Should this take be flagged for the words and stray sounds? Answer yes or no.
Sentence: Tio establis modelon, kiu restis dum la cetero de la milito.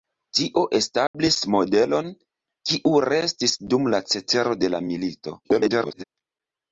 yes